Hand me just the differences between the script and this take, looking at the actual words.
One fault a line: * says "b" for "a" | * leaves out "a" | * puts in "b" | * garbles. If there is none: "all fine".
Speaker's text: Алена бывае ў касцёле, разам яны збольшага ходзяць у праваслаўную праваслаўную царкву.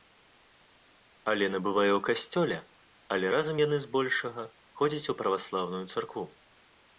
* puts in "але"
* leaves out "праваслаўную"